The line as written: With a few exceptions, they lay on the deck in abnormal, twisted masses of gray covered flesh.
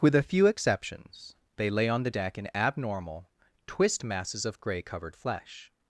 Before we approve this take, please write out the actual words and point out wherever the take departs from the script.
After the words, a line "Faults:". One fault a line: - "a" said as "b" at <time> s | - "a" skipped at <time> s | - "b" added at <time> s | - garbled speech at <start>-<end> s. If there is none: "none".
With a few exceptions, they lay on the deck in abnormal, twist masses of gray covered flesh.
Faults:
- "twisted" said as "twist" at 3.7 s